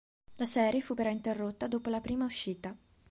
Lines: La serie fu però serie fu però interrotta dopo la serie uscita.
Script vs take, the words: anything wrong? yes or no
yes